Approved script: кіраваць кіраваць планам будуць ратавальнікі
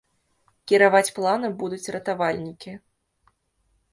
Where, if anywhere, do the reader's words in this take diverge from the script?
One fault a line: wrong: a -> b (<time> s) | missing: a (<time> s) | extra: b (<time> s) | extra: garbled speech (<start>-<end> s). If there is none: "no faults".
missing: кіраваць (1.1 s)